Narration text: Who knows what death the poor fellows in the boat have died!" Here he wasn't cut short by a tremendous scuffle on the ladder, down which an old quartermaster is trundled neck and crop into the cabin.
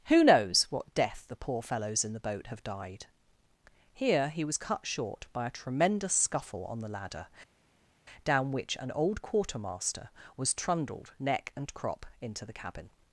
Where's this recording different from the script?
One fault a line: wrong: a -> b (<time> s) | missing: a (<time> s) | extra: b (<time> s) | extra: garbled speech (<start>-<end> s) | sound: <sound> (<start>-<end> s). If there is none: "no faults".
wrong: wasn't -> was (4.4 s)
wrong: is -> was (10.4 s)